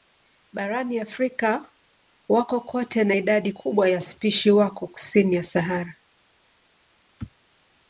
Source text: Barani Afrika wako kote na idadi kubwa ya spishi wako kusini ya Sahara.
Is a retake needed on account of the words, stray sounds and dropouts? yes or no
no